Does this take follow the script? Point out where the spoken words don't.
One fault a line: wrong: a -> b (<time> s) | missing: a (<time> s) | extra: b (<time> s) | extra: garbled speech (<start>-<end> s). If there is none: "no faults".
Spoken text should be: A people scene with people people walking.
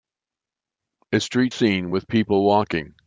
wrong: people -> street (1.2 s)
missing: people (2.4 s)